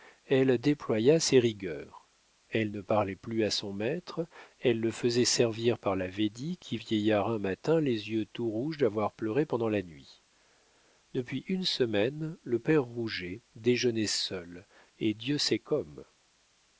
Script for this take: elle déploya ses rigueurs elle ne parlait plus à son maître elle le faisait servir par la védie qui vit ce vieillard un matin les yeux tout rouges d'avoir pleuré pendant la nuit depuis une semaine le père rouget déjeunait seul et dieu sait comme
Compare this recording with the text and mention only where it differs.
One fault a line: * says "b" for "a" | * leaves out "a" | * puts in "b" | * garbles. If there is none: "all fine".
* leaves out "vit ce"